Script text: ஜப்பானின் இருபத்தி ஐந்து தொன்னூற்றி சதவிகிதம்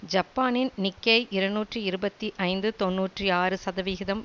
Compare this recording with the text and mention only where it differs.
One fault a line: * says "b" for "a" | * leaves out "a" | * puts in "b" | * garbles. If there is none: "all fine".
* puts in "நிக்கேய் இருநூற்றி"
* puts in "ஆறு"